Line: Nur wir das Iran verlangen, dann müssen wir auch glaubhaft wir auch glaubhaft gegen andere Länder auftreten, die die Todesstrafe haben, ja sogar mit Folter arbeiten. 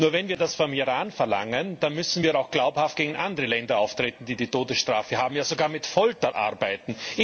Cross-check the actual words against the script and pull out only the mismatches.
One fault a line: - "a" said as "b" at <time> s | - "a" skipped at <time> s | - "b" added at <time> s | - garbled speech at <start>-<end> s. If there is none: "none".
- "wenn" added at 0.1 s
- "vom" added at 0.6 s
- "wir auch glaubhaft" skipped at 3.0 s